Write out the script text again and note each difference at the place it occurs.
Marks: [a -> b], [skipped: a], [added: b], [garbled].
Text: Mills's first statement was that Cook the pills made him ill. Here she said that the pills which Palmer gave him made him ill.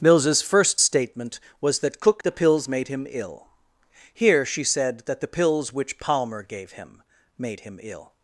Mills's first statement was that Cook the pills made him ill. Here she said that the pills which Palmer gave him made him ill.